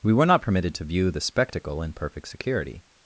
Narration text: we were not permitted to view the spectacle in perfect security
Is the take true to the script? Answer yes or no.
yes